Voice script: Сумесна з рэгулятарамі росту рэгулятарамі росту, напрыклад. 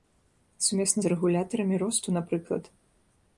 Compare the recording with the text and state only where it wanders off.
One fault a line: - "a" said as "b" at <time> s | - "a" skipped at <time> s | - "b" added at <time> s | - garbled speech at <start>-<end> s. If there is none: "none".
- "рэгулятарамі росту" skipped at 2.1 s